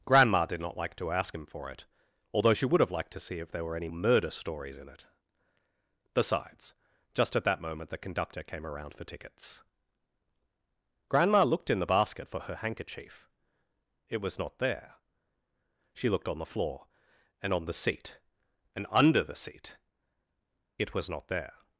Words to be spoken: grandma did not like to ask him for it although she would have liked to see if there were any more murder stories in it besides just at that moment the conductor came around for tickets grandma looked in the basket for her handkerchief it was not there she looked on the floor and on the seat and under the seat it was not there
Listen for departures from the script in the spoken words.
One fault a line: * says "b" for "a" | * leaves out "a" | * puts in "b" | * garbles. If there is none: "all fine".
* leaves out "more"